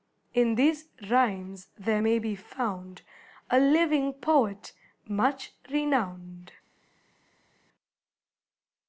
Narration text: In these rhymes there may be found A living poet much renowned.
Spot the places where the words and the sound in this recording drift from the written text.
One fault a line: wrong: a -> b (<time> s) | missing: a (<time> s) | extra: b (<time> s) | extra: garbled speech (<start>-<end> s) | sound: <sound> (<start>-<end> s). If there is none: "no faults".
no faults